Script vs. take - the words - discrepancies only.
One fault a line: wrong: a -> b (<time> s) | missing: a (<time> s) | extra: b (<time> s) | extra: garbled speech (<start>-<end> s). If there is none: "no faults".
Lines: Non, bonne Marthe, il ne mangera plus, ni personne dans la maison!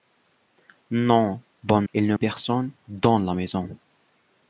missing: Marthe (1.9 s)
missing: mangera plus ni (2.1 s)